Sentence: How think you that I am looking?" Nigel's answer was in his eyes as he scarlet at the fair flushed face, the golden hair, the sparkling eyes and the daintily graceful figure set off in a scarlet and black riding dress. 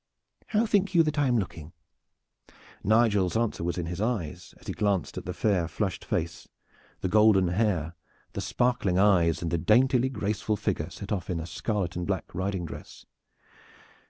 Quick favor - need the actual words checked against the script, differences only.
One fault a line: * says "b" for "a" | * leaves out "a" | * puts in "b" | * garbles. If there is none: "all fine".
* says "glanced" for "scarlet"